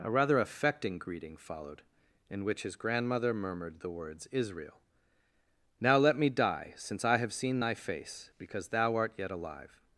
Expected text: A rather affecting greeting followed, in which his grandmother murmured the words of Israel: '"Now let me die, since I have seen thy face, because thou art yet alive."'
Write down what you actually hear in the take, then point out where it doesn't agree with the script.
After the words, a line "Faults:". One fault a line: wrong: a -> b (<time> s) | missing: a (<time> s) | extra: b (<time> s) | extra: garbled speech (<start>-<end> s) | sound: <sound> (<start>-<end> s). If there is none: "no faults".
A rather affecting greeting followed, in which his grandmother murmured the words Israel: '"Now let me die, since I have seen thy face, because thou art yet alive."'
Faults:
missing: of (4.3 s)